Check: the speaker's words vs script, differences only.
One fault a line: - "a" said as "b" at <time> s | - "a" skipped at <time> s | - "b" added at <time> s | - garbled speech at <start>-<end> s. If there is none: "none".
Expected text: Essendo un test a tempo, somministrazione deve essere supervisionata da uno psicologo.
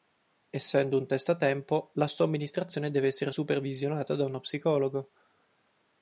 - "la" added at 1.9 s